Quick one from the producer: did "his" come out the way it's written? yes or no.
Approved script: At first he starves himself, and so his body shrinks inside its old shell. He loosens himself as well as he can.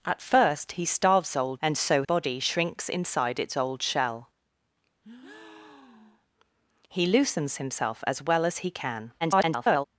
no